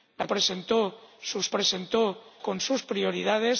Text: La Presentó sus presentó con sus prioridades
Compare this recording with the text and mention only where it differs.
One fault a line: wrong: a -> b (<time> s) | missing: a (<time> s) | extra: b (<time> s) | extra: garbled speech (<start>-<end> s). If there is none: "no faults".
no faults